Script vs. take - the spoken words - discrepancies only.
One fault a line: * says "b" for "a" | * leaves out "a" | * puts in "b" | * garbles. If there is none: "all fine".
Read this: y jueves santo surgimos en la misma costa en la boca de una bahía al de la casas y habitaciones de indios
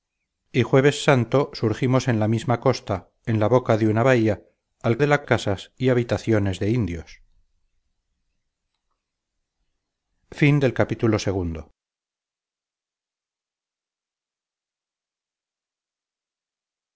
all fine